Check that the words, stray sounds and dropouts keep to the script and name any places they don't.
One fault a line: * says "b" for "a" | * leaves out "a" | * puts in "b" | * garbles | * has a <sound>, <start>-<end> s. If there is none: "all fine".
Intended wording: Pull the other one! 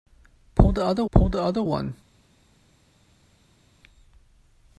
* puts in "pull the other"